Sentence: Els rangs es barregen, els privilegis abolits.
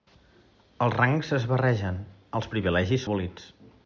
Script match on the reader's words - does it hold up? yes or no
yes